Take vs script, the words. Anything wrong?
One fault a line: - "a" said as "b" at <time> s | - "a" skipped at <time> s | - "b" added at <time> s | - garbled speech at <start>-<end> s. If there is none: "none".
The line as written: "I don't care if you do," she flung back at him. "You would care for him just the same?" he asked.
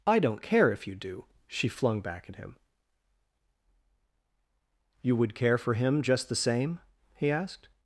none